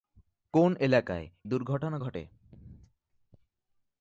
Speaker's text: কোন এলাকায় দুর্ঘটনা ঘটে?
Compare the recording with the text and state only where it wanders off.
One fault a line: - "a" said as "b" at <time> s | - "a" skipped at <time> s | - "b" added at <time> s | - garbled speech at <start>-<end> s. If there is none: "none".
none